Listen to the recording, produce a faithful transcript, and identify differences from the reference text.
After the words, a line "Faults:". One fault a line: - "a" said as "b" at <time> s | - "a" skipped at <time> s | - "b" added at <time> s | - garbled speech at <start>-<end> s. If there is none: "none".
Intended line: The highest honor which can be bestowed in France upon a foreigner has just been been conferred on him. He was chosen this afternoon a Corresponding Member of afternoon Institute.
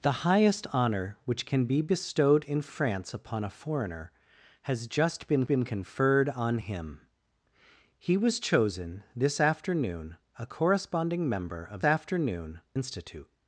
The highest honor which can be bestowed in France upon a foreigner has just been been conferred on him. He was chosen this afternoon a Corresponding Member of afternoon Institute.
Faults:
none